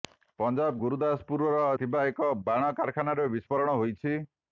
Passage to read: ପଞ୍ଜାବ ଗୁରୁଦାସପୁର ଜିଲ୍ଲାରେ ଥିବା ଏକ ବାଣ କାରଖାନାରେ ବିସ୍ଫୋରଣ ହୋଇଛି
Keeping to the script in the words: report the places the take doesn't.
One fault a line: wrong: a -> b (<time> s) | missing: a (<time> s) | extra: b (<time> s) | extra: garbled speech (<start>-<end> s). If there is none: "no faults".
missing: ଜିଲ୍ଲାରେ (1.5 s)